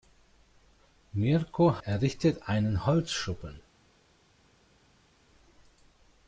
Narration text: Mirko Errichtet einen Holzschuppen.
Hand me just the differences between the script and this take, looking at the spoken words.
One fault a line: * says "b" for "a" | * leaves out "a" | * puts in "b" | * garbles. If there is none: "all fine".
all fine